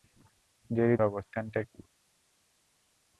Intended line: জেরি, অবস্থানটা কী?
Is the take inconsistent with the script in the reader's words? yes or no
no